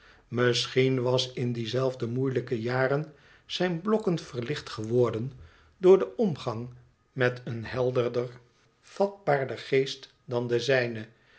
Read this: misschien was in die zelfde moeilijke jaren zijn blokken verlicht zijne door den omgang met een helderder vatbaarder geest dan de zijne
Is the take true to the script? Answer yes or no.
no